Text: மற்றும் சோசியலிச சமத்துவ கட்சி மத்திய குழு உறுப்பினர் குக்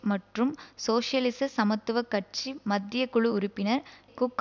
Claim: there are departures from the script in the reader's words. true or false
false